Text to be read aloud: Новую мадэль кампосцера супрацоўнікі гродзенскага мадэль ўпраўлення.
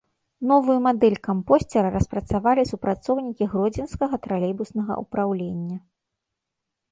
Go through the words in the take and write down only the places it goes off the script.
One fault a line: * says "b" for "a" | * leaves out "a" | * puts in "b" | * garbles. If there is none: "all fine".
* puts in "распрацавалі"
* says "тралейбуснага" for "мадэль"